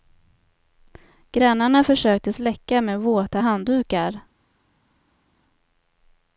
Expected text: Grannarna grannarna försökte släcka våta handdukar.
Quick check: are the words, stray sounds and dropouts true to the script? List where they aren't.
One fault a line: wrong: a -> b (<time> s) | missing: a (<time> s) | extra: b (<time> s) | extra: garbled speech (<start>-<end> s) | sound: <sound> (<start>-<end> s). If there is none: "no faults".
missing: grannarna (1.8 s)
extra: med (2.8 s)